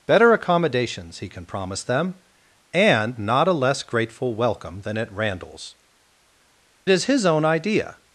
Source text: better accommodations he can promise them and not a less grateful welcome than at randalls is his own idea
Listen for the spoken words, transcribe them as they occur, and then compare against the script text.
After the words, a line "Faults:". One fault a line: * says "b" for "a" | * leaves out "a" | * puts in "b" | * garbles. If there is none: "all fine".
better accommodations he can promise them and not a less grateful welcome than at randalls is his own idea
Faults:
all fine